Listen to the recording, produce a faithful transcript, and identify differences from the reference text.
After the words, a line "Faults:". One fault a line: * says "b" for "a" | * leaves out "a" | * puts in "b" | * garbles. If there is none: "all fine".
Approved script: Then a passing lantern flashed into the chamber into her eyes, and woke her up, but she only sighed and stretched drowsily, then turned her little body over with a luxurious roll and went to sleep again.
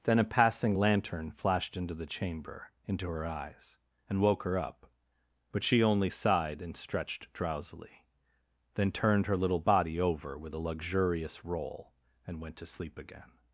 Then a passing lantern flashed into the chamber into her eyes, and woke her up, but she only sighed and stretched drowsily, then turned her little body over with a luxurious roll and went to sleep again.
Faults:
all fine